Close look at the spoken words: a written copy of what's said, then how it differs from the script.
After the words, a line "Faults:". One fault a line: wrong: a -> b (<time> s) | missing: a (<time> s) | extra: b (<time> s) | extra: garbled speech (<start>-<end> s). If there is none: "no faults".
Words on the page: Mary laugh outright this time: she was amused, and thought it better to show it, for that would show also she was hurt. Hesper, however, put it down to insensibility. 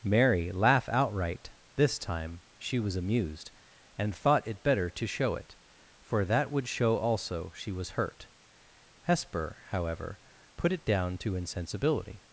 Mary laugh outright this time: she was amused, and thought it better to show it, for that would show also she was hurt. Hesper, however, put it down to insensibility.
Faults:
no faults